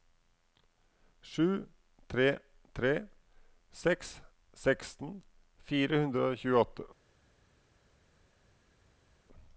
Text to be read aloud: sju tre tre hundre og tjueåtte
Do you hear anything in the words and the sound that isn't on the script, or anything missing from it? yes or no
yes